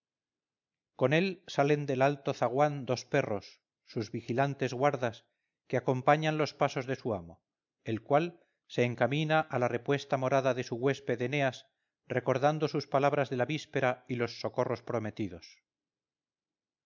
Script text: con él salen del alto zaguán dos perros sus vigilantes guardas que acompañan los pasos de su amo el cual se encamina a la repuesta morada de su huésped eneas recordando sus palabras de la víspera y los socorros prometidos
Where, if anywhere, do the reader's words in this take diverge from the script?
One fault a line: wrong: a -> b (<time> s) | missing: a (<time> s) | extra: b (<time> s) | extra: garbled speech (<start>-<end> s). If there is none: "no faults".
no faults